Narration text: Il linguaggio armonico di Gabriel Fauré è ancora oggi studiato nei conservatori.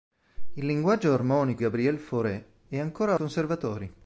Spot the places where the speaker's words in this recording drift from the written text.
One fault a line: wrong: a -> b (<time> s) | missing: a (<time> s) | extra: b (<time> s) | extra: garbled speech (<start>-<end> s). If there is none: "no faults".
missing: di (1.6 s)
missing: oggi studiato nei (3.2 s)